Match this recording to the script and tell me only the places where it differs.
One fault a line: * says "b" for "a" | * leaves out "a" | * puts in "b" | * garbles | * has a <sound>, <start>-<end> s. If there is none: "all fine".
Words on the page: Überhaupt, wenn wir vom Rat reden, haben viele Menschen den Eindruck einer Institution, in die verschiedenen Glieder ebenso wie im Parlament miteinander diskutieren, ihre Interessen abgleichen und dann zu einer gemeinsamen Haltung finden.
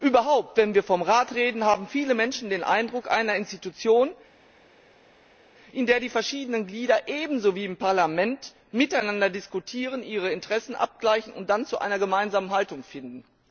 * puts in "der"